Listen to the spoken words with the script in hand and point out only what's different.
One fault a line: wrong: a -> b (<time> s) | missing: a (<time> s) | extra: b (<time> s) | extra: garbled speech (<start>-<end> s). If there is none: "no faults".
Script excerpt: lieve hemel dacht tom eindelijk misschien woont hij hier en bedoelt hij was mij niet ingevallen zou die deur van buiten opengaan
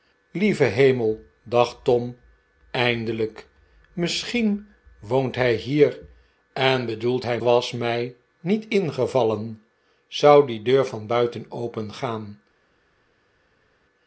no faults